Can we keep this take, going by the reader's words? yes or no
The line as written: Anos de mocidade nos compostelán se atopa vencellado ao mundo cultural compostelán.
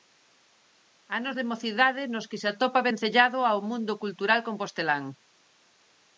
no